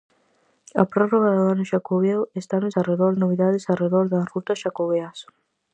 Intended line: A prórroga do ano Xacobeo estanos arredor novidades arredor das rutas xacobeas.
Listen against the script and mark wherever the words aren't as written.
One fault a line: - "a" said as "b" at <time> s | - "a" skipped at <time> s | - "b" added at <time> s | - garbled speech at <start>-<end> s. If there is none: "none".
none